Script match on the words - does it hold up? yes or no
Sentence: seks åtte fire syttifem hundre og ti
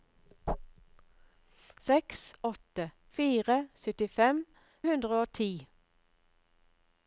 yes